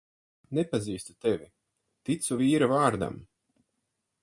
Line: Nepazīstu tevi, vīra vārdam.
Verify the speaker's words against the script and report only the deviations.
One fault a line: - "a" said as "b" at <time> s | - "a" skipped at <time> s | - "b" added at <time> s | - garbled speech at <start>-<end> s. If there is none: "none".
- "ticu" added at 2.1 s